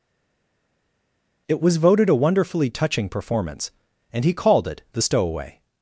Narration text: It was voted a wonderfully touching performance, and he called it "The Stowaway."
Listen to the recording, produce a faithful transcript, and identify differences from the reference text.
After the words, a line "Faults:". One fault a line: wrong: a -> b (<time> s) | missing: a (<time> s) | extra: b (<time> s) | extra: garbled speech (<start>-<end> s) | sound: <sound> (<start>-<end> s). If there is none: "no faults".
It was voted a wonderfully touching performance, and he called it "The Stowaway."
Faults:
no faults